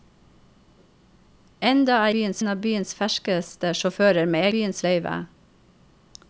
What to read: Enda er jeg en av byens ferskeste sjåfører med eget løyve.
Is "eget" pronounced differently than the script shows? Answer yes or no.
yes